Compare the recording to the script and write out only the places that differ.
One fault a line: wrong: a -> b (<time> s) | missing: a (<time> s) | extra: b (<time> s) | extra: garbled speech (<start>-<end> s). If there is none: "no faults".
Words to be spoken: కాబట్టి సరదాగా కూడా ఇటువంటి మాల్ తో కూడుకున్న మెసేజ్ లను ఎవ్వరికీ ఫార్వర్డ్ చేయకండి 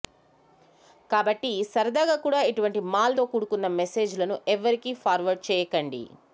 no faults